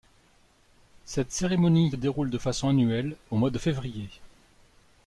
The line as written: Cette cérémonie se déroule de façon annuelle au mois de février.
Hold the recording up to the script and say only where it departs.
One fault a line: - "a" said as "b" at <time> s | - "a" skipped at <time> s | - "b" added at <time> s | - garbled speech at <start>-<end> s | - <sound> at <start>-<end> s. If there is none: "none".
- "se" skipped at 1.9 s